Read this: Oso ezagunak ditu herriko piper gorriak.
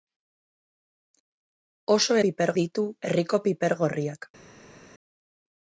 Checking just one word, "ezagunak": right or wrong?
wrong